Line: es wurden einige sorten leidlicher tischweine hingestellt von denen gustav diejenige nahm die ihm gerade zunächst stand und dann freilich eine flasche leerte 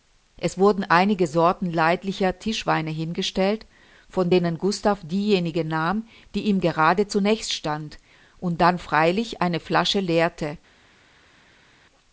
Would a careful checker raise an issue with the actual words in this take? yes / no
no